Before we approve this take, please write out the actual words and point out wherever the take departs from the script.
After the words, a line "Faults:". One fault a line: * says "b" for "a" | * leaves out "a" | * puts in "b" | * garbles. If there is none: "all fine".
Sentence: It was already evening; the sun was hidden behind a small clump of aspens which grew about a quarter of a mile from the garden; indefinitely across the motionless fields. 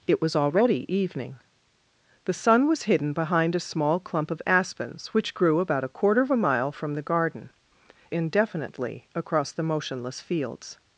It was already evening; the sun was hidden behind a small clump of aspens which grew about a quarter of a mile from the garden; indefinitely across the motionless fields.
Faults:
all fine